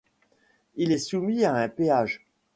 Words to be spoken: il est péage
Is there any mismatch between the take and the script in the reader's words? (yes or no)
yes